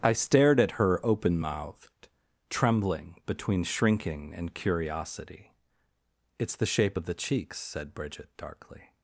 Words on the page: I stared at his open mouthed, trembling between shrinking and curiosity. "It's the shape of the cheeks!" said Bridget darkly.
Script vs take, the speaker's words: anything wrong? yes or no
yes